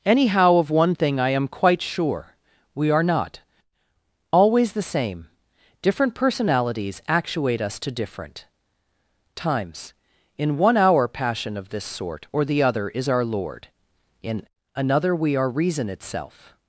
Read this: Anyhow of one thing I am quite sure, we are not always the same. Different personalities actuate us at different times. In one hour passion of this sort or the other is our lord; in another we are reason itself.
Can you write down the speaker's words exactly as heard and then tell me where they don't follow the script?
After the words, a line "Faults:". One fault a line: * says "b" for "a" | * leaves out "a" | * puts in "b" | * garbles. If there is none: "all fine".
Anyhow of one thing I am quite sure, we are not always the same. Different personalities actuate us to different times. In one hour passion of this sort or the other is our lord; in another we are reason itself.
Faults:
* says "to" for "at"